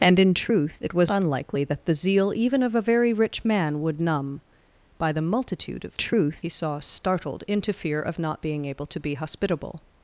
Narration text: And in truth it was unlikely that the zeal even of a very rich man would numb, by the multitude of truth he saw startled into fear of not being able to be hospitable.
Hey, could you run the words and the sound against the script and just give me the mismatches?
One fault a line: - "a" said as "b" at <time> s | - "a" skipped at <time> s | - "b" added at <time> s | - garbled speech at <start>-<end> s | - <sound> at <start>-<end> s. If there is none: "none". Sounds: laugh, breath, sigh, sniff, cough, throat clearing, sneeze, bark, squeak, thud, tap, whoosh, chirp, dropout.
none